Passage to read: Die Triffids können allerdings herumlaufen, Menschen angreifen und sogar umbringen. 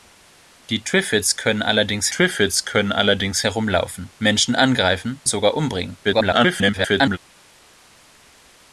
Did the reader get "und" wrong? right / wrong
wrong